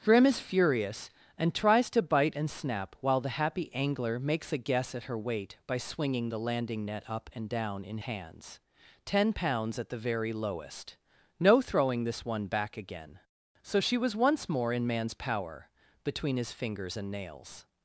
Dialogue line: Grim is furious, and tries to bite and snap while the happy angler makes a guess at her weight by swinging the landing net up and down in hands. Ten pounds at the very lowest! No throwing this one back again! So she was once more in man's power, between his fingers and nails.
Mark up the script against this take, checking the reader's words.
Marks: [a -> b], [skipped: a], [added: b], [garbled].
Grim is furious, and tries to bite and snap while the happy angler makes a guess at her weight by swinging the landing net up and down in hands. Ten pounds at the very lowest! No throwing this one back again! So she was once more in man's power, between his fingers and nails.